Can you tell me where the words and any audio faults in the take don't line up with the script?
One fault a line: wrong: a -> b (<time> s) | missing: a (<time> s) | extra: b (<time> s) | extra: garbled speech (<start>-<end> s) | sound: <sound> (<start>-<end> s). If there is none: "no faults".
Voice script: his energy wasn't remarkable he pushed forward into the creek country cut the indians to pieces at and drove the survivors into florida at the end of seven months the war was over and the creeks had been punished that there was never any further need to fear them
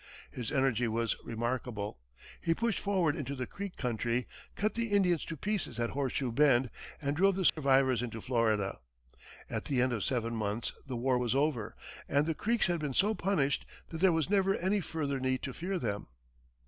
wrong: wasn't -> was (0.9 s)
extra: horseshoe bend (5.9 s)
sound: dropout (7.5-7.6 s)
extra: so (12.9 s)